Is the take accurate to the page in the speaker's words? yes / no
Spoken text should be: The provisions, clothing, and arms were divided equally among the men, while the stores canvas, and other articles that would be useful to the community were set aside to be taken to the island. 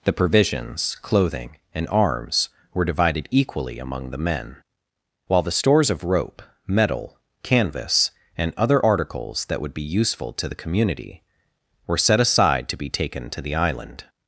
no